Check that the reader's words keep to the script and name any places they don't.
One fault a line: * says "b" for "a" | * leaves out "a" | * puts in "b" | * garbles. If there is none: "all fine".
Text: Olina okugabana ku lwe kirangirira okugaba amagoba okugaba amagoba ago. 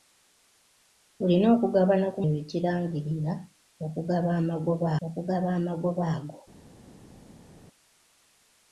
all fine